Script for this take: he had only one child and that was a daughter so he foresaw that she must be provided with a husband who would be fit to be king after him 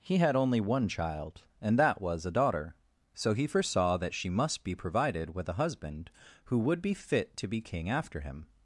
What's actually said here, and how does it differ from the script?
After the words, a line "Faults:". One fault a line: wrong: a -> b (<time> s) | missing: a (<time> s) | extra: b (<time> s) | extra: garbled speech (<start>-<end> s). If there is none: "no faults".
he had only one child and that was a daughter so he foresaw that she must be provided with a husband who would be fit to be king after him
Faults:
no faults